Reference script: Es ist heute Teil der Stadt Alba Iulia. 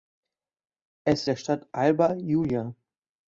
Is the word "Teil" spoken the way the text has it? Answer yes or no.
no